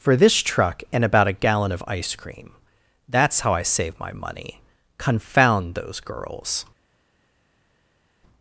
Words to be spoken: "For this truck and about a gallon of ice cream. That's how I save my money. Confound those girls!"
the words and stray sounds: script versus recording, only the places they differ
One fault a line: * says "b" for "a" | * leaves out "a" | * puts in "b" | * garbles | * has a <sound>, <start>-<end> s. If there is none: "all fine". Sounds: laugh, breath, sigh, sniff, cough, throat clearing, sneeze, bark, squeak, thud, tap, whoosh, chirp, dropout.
all fine